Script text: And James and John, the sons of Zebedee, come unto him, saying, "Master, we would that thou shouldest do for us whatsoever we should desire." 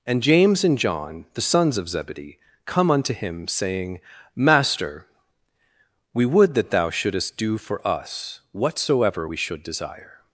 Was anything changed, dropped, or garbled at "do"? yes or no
no